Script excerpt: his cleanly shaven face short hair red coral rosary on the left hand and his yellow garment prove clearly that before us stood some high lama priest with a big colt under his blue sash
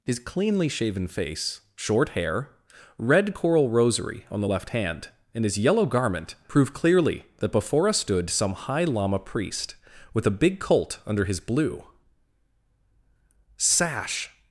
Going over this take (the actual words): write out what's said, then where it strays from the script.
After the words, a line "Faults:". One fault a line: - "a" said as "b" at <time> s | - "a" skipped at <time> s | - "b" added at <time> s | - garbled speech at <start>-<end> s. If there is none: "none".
his cleanly shaven face short hair red coral rosary on the left hand and his yellow garment prove clearly that before us stood some high lama priest with a big colt under his blue sash
Faults:
none